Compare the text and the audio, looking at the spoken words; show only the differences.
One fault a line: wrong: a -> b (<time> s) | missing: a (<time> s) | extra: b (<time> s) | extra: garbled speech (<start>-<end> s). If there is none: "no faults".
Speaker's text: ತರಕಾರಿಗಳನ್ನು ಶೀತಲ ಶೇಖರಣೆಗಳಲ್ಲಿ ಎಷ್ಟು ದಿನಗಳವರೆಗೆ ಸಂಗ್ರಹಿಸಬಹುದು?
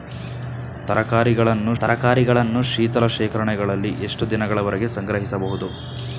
extra: ತರಕಾರಿಗಳನ್ನು (1.8 s)